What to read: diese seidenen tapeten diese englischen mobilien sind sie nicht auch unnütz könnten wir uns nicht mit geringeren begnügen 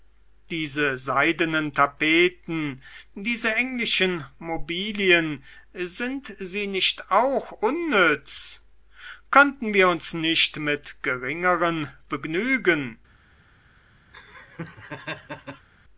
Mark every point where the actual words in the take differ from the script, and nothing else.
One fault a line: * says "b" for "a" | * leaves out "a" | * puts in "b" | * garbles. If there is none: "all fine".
all fine